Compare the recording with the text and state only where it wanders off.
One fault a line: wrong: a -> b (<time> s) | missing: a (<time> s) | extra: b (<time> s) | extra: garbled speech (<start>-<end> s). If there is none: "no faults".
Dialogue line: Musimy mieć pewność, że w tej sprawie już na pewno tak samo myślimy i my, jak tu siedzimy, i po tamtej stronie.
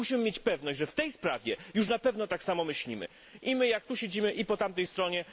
no faults